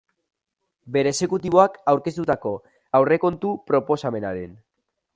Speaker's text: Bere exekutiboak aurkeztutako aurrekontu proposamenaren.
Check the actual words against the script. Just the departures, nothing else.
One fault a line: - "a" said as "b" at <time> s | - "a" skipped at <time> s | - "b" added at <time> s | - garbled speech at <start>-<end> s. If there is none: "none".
none